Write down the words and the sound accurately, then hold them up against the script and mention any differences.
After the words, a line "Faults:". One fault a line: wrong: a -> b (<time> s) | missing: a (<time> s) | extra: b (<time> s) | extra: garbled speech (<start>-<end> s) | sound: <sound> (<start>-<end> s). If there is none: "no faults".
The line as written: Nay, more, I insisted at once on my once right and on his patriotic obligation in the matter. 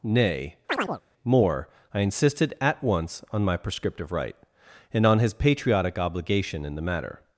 Nay, more, I insisted at once on my prescriptive right and on his patriotic obligation in the matter.
Faults:
sound: chirp (0.7-1.0 s)
wrong: once -> prescriptive (3.5 s)